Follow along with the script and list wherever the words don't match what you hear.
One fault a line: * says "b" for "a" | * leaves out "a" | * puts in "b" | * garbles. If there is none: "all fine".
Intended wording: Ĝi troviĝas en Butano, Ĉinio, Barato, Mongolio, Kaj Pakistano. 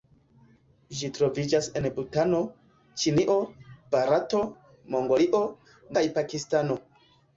all fine